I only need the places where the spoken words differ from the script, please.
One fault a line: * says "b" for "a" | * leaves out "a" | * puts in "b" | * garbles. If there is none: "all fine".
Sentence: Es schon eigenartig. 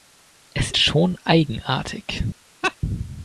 all fine